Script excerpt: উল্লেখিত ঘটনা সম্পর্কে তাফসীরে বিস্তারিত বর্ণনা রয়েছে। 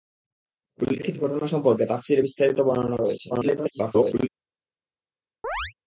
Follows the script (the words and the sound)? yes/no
no